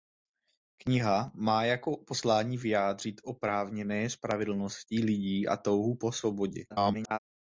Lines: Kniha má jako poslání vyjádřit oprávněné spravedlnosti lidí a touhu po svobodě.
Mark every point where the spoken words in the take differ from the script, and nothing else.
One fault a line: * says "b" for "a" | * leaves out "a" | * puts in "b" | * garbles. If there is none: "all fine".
* garbles